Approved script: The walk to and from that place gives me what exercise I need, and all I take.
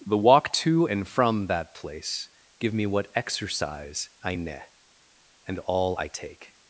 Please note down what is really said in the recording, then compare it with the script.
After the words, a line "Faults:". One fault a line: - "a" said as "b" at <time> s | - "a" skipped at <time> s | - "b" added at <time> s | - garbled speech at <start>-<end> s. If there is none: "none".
The walk to and from that place give me what exercise I ne, and all I take.
Faults:
- "gives" said as "give" at 2.6 s
- "need" said as "ne" at 4.3 s